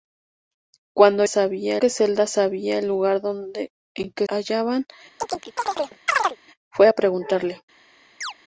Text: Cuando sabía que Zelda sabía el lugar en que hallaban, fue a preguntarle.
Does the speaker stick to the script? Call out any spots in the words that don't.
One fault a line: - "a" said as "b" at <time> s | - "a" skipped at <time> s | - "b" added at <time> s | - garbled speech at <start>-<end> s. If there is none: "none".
none